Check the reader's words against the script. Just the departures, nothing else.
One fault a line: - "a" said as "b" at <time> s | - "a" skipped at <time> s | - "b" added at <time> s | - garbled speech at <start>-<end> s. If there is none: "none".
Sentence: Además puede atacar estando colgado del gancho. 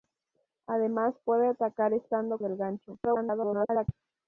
- "colgado" skipped at 2.4 s
- garbled speech at 3.0-3.9 s